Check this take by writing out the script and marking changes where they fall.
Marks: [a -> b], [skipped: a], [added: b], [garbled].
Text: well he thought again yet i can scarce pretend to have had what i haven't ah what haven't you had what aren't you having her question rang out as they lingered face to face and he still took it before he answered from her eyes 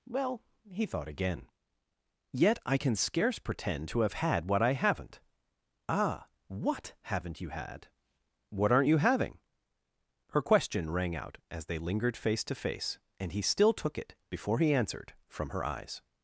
well he thought again yet i can scarce pretend to have had what i haven't ah what haven't you had what aren't you having her question rang out as they lingered face to face and he still took it before he answered from her eyes